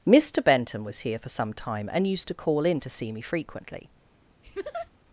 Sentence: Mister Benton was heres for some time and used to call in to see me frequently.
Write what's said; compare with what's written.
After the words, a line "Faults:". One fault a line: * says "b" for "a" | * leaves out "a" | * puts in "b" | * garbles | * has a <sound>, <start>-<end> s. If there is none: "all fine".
Mister Benton was here for some time and used to call in to see me frequently.
Faults:
* says "here" for "heres"
* has a laugh, 4.4-4.9 s